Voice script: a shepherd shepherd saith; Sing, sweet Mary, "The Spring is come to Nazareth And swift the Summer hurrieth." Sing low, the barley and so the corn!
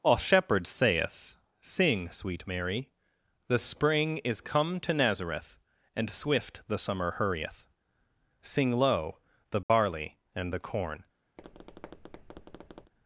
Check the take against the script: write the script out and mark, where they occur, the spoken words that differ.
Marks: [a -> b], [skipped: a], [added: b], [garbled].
a shepherd [skipped: shepherd] saith; Sing, sweet Mary, "The Spring is come to Nazareth And swift the Summer hurrieth." Sing low, the barley and [skipped: so] the corn!